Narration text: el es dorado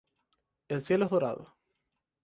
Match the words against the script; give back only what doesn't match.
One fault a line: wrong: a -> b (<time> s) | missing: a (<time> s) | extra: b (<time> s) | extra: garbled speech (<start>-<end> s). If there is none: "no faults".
extra: cielo (0.8 s)